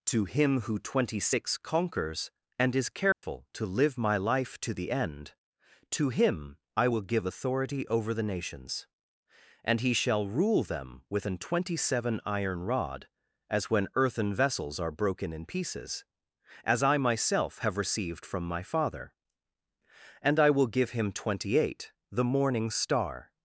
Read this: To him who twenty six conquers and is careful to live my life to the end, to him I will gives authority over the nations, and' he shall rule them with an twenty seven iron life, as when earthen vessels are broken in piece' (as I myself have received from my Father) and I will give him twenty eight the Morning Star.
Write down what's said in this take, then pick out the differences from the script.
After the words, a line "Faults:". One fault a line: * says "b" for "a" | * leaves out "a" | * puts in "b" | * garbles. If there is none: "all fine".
To him who twenty six conquers and is careful to live my life to the end, to him I will give authority over the nations, and' he shall rule them with an twenty seven iron rod, as when earthen vessels are broken in pieces' (as I myself have received from my Father) and I will give him twenty eight the Morning Star.
Faults:
* says "give" for "gives"
* says "rod" for "life"
* says "pieces" for "piece"